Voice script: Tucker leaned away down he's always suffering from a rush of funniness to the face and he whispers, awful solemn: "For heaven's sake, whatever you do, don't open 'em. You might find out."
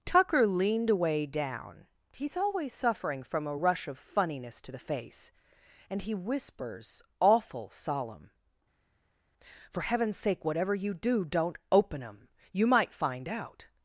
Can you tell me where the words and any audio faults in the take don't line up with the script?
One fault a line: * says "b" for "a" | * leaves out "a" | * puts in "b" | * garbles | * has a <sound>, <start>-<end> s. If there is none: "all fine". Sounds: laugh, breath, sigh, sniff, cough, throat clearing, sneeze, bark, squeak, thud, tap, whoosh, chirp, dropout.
all fine